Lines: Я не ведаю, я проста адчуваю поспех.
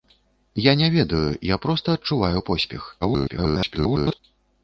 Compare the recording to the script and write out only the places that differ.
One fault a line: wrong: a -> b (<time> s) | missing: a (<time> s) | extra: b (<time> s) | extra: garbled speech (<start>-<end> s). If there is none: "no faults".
extra: garbled speech (3.0-4.2 s)